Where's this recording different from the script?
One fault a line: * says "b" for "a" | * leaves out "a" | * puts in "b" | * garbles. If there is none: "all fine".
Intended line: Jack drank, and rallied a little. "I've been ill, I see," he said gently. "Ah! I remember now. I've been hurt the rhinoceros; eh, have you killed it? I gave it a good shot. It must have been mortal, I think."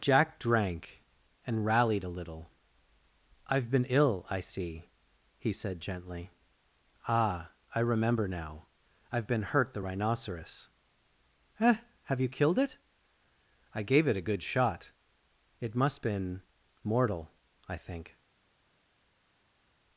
* leaves out "have"